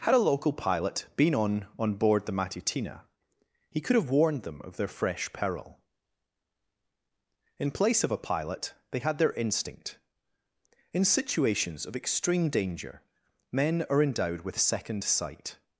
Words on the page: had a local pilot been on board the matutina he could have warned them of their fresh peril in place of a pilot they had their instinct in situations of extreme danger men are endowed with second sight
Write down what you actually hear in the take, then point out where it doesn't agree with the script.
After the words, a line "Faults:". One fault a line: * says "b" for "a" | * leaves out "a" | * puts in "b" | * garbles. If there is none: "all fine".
had a local pilot been on on board the matutina he could have warned them of their fresh peril in place of a pilot they had their instinct in situations of extreme danger men are endowed with second sight
Faults:
* puts in "on"